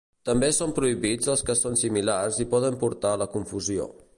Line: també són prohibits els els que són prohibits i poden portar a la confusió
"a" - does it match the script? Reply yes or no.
yes